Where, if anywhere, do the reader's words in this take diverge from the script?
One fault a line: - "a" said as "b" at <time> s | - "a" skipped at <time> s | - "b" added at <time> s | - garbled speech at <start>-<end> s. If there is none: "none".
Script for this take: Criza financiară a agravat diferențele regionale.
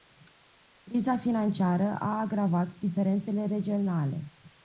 none